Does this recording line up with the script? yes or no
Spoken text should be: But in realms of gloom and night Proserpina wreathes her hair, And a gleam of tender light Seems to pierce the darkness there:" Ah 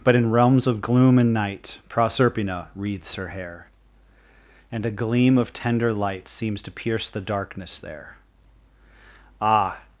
yes